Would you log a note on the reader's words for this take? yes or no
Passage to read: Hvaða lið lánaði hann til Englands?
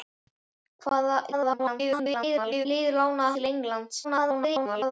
yes